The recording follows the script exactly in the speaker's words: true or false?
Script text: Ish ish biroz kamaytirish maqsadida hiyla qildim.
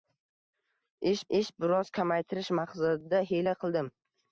true